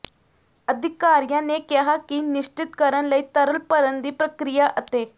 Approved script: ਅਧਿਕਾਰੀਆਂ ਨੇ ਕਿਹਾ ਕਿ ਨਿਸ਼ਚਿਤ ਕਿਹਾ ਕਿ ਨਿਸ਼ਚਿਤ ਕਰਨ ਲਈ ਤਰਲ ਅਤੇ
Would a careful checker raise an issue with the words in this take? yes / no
yes